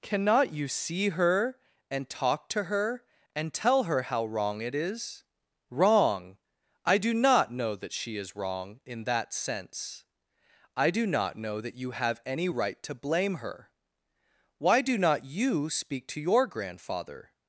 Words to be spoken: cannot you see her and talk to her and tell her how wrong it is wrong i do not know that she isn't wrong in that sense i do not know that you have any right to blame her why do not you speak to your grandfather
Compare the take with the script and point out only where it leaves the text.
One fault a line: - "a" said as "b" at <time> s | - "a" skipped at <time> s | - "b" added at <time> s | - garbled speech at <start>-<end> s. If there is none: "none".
- "isn't" said as "is" at 8.2 s